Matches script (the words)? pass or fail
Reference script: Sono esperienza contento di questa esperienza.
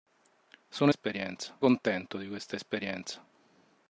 pass